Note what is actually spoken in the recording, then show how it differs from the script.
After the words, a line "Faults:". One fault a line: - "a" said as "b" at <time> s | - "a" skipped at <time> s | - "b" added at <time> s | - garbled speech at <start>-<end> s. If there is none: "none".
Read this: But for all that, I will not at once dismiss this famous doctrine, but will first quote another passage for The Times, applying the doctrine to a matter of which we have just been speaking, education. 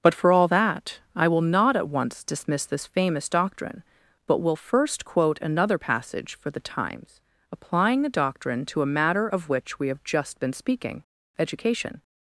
But for all that, I will not at once dismiss this famous doctrine, but will first quote another passage for The Times, applying the doctrine to a matter of which we have just been speaking, education.
Faults:
none